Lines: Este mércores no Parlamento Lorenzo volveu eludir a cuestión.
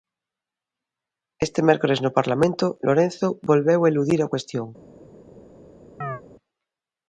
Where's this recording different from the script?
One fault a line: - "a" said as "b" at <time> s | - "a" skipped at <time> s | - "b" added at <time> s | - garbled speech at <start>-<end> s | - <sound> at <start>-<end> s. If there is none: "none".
- chirp at 6.0-6.2 s